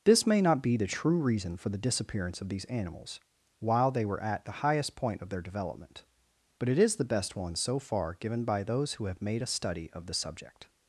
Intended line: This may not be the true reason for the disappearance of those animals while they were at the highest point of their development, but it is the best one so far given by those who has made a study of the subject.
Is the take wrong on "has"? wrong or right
wrong